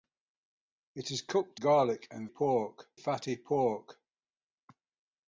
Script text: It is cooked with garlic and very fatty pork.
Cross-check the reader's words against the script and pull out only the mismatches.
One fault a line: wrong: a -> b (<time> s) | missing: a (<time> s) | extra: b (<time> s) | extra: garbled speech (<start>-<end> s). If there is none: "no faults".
missing: with (1.6 s)
wrong: very -> pork (2.3 s)